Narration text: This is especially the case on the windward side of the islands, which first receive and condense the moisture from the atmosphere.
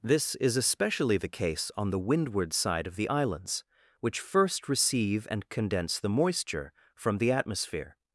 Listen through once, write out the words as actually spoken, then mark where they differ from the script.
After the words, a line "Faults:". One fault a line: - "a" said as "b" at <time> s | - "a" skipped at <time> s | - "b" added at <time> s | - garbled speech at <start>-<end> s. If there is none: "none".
This is especially the case on the windward side of the islands, which first receive and condense the moisture from the atmosphere.
Faults:
none